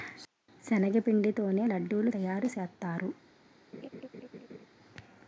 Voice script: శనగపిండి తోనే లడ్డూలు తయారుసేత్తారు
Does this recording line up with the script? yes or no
yes